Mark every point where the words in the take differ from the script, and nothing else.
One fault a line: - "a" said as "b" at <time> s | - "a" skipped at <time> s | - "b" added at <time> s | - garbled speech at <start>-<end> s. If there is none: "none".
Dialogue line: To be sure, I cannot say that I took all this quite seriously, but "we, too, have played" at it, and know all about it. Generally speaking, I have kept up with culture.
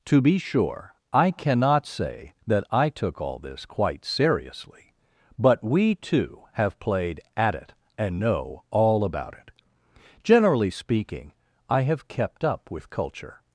none